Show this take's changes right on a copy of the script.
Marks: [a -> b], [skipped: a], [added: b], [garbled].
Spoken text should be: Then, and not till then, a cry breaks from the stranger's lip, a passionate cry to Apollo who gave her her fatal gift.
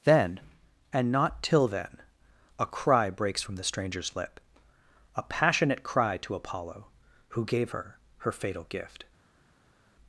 Then, and not till then, a cry breaks from the stranger's lip, a passionate cry to Apollo who gave her her fatal gift.